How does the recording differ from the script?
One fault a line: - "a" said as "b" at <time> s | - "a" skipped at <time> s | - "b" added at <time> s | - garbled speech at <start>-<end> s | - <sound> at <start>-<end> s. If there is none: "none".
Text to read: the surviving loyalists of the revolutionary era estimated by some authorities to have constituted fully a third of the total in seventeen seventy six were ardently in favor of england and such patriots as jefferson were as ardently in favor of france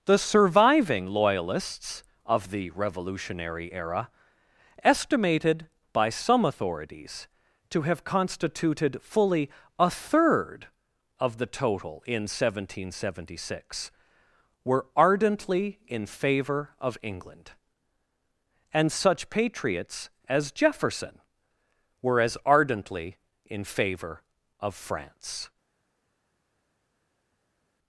none